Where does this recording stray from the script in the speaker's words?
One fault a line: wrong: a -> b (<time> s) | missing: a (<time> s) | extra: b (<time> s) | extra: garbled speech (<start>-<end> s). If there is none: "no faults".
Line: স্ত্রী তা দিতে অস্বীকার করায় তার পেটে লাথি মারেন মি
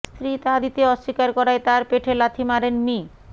no faults